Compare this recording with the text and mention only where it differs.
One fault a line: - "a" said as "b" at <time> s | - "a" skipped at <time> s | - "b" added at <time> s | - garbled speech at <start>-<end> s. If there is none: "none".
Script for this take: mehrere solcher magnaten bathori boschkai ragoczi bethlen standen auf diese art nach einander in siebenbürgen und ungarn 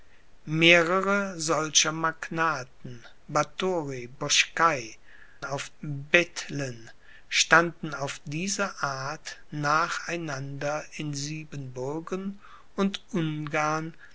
- "ragoczi" said as "auf" at 5.4 s